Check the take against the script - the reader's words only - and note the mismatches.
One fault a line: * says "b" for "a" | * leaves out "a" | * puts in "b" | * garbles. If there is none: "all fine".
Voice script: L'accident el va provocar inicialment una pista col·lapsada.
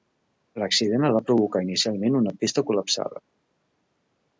all fine